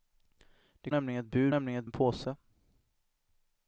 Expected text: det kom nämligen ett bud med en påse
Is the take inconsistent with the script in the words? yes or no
yes